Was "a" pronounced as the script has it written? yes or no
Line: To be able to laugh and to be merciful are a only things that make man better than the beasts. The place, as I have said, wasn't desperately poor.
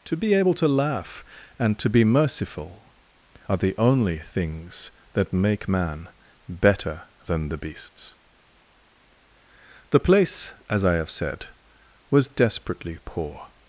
no